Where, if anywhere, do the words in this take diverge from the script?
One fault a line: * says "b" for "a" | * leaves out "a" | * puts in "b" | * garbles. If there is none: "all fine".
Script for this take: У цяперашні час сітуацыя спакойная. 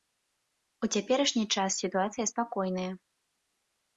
all fine